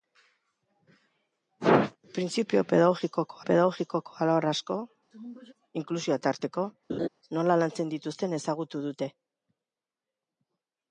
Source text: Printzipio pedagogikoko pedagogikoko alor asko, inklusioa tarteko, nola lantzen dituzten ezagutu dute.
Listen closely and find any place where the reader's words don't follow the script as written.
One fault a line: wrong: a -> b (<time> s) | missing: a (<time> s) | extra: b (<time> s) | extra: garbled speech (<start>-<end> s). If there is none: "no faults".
no faults